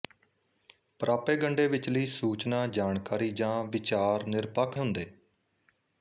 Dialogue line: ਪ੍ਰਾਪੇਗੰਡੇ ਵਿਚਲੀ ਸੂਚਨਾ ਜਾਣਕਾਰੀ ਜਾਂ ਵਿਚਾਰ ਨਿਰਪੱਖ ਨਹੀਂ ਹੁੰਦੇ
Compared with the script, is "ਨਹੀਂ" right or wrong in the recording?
wrong